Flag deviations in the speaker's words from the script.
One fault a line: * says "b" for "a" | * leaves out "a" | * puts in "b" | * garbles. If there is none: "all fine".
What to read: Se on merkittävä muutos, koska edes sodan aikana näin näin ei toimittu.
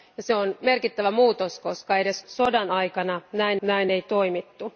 all fine